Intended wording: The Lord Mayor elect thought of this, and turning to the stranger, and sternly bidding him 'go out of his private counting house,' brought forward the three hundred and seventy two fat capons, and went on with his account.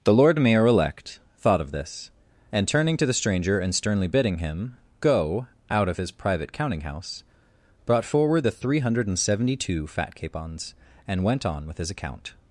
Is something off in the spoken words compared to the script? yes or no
no